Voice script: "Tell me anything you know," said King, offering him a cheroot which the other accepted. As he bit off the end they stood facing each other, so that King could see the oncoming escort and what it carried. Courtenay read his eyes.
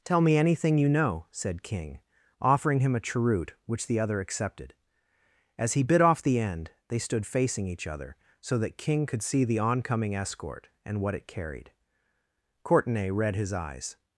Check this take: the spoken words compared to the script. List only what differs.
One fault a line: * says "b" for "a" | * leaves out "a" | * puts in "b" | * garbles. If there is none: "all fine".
all fine